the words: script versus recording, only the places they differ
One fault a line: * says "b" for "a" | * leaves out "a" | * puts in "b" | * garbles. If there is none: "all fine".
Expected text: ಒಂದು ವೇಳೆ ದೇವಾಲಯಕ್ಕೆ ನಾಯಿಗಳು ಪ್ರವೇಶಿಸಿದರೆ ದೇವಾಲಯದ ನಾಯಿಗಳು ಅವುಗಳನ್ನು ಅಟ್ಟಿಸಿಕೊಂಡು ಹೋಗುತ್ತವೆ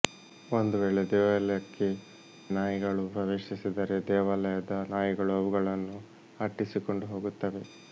all fine